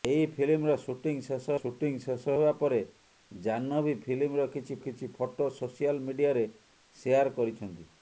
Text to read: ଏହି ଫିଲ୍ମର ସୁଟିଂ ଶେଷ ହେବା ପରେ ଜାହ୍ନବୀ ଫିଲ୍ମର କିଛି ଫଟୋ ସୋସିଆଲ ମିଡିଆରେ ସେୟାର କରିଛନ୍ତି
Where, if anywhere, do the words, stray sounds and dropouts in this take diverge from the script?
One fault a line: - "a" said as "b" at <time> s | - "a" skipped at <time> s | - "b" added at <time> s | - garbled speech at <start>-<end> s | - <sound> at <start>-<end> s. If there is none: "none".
- "ସୁଟିଂ ଶେଷ" added at 1.5 s
- "କିଛି" added at 4.8 s